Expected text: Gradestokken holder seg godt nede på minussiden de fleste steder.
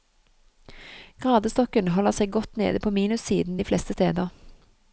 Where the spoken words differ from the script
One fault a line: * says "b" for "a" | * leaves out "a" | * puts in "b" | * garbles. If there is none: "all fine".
all fine